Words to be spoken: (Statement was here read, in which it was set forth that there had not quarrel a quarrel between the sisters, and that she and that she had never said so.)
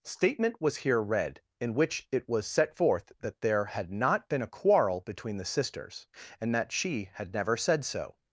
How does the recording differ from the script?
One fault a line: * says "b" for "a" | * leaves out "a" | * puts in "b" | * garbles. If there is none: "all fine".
* says "been" for "quarrel"
* leaves out "and that she"